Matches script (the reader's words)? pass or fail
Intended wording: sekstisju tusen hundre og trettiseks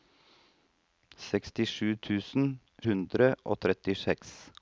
pass